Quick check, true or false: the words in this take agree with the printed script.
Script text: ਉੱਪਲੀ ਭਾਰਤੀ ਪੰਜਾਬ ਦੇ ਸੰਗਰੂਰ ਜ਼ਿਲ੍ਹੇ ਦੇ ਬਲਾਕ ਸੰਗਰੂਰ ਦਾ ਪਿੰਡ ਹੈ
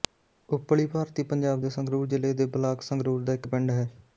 false